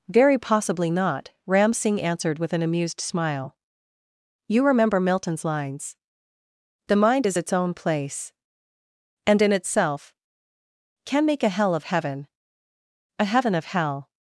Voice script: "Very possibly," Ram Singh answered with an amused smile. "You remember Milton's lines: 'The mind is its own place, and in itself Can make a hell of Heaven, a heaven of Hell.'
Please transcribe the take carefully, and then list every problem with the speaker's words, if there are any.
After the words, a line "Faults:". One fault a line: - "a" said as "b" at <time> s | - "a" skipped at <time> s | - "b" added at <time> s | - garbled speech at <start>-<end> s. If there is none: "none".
"Very possibly not," Ram Singh answered with an amused smile. "You remember Milton's lines: 'The mind is its own place, and in itself Can make a hell of Heaven, a heaven of Hell.'
Faults:
- "not" added at 0.9 s